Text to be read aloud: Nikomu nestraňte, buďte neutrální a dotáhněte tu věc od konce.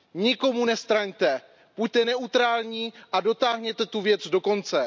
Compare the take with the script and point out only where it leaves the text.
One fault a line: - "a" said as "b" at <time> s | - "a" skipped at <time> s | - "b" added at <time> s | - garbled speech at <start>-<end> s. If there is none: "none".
- "od" said as "do" at 4.3 s